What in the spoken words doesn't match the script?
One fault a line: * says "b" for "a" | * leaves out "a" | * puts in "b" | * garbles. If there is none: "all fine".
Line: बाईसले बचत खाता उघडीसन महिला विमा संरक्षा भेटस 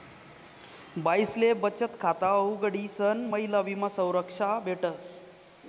all fine